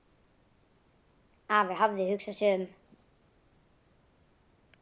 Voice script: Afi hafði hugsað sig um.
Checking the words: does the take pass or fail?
pass